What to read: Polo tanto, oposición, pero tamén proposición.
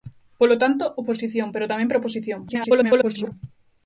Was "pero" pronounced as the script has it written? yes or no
yes